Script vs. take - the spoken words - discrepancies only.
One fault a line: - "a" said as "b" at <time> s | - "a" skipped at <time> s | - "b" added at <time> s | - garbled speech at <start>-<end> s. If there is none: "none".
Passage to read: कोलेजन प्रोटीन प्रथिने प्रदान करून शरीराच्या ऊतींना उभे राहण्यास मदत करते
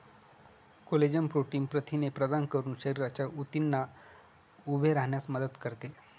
none